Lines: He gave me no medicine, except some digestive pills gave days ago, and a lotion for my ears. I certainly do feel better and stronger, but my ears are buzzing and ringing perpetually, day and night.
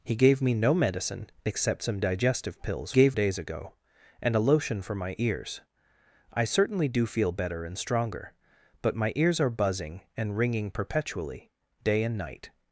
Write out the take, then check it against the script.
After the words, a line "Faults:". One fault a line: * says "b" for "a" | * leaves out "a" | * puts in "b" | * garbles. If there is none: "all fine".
He gave me no medicine, except some digestive pills gave days ago, and a lotion for my ears. I certainly do feel better and stronger, but my ears are buzzing and ringing perpetually, day and night.
Faults:
all fine